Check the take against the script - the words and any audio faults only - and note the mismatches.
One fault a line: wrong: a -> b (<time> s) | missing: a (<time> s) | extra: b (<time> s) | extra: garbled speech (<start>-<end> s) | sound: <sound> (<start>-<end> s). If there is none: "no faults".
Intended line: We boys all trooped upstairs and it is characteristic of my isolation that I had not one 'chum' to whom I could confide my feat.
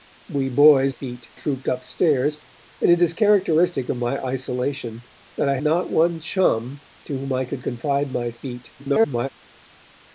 wrong: all -> feat (0.9 s)
missing: had (5.6 s)
extra: garbled speech (8.8-9.3 s)